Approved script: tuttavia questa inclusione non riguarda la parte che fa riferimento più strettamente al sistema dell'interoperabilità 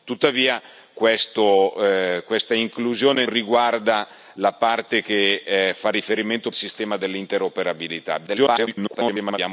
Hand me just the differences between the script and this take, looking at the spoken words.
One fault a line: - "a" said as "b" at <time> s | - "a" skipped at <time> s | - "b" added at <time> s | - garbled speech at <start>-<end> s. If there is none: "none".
- "non" skipped at 3.2 s
- "più strettamente al" skipped at 6.5 s
- garbled speech at 8.3-9.4 s